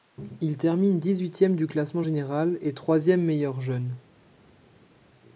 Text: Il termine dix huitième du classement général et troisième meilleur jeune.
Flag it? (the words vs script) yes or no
no